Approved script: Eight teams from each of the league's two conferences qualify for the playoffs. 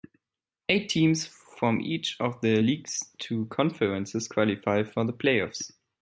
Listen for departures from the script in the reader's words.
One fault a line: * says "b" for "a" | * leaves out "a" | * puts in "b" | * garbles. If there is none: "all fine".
all fine